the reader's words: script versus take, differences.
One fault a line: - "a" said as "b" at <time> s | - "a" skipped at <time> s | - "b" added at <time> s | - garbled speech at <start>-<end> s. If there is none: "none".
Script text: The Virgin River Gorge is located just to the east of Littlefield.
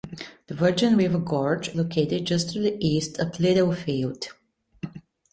- "is" skipped at 1.7 s